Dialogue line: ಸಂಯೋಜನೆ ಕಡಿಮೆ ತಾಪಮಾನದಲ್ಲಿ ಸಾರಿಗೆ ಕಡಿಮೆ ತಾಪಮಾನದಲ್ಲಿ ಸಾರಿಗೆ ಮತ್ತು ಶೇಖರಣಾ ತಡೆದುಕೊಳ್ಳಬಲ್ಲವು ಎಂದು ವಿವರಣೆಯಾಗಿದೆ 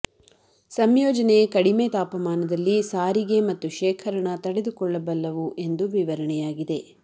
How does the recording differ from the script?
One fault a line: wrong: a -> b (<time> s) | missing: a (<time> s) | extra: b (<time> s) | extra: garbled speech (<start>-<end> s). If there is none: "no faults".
missing: ಕಡಿಮೆ ತಾಪಮಾನದಲ್ಲಿ ಸಾರಿಗೆ (3.4 s)